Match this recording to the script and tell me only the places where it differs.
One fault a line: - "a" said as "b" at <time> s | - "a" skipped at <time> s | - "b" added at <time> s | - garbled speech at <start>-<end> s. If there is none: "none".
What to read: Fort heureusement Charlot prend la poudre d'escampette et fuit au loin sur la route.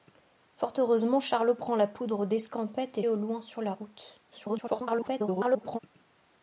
- "fuit" skipped at 3.0 s
- garbled speech at 4.3-5.8 s